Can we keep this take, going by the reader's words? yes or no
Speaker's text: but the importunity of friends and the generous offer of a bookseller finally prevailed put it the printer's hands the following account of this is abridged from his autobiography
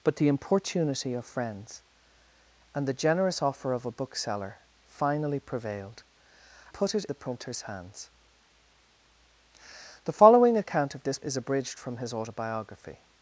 yes